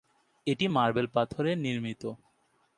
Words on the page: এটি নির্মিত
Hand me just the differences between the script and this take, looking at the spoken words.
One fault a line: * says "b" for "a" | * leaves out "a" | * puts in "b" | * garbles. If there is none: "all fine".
* puts in "মার্বেল পাথরে"